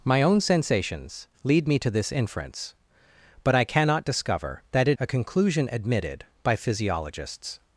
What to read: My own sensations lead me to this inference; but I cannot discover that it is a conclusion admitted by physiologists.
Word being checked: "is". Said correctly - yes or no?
no